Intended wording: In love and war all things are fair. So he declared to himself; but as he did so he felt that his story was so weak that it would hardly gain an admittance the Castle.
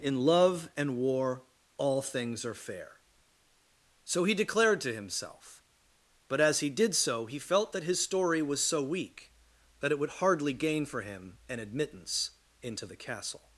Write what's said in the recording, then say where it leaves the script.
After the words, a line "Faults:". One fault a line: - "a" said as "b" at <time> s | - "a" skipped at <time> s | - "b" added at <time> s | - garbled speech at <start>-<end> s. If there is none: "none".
In love and war all things are fair. So he declared to himself; but as he did so he felt that his story was so weak that it would hardly gain for him an admittance into the Castle.
Faults:
- "for him" added at 10.8 s
- "into" added at 12.6 s